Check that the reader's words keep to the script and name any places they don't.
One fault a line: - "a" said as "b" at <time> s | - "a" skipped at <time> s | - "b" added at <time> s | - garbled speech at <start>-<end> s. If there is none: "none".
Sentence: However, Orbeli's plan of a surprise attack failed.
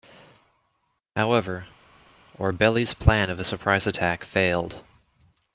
none